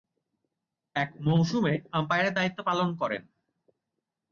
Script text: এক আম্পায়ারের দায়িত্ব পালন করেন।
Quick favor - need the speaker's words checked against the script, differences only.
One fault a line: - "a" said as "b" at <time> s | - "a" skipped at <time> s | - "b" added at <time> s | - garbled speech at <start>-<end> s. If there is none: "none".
- "মৌসুমে" added at 1.2 s